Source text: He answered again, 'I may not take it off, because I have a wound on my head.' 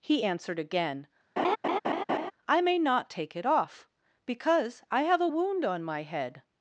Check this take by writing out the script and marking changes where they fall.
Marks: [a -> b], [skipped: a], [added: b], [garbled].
He answered again, 'I may not take it off, because I have a wound on my head.'